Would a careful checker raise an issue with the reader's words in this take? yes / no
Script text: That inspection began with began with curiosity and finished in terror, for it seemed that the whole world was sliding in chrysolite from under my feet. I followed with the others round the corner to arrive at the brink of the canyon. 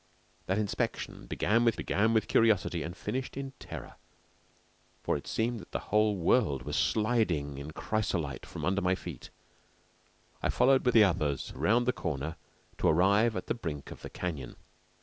no